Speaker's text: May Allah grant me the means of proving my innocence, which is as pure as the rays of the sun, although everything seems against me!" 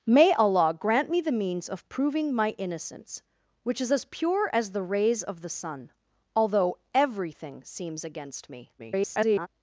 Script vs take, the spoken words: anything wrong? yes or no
yes